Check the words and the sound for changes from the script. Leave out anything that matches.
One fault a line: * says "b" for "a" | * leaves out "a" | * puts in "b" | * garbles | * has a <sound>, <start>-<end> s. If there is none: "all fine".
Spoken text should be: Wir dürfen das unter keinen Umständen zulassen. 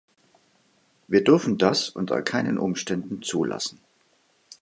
all fine